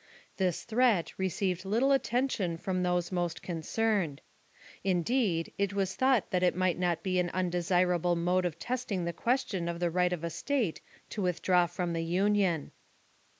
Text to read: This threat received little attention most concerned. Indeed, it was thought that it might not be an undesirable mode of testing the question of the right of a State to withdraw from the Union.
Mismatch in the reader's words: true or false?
true